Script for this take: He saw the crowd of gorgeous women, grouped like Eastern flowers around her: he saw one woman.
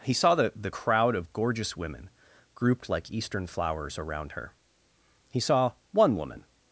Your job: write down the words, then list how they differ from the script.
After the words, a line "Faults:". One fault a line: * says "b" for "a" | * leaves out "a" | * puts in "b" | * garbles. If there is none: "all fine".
He saw the the crowd of gorgeous women, grouped like Eastern flowers around her: he saw one woman.
Faults:
* puts in "the"